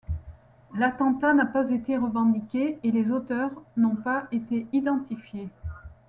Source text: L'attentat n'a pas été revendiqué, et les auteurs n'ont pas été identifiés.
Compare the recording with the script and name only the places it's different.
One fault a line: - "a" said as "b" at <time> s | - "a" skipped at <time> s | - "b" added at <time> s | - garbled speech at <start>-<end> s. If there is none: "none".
none